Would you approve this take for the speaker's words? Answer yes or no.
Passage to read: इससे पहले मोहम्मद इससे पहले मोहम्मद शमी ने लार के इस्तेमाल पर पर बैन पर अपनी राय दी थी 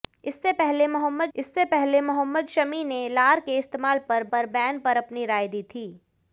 yes